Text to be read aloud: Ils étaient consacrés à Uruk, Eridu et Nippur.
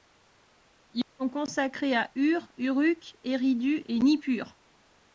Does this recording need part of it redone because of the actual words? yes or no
yes